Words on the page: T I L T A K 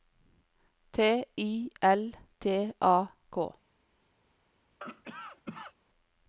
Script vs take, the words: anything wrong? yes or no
no